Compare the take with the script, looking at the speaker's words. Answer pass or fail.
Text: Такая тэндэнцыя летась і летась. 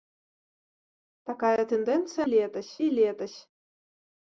pass